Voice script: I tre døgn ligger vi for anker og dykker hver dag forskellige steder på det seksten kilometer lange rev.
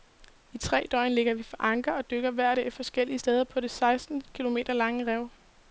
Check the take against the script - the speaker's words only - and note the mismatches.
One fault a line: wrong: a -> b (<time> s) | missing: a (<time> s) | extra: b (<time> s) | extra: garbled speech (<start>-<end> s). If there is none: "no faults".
no faults